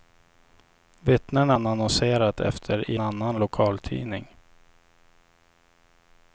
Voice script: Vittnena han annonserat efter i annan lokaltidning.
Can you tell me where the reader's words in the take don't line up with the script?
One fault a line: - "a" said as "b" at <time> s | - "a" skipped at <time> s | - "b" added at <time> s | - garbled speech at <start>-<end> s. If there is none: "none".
none